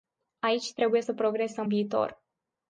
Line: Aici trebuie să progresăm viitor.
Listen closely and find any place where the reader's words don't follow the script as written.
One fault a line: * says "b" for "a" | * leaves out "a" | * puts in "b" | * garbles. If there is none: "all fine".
all fine